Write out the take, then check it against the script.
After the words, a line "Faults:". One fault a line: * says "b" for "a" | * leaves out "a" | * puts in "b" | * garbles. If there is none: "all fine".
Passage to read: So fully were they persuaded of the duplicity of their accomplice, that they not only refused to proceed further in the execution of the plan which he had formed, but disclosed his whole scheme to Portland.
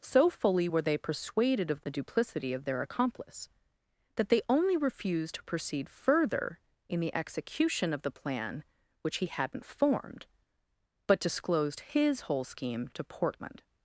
So fully were they persuaded of the duplicity of their accomplice, that they only refused to proceed further in the execution of the plan which he hadn't formed, but disclosed his whole scheme to Portland.
Faults:
* leaves out "not"
* says "hadn't" for "had"